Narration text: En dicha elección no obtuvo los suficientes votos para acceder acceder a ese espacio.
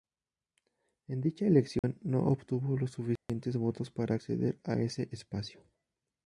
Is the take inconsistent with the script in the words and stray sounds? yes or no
yes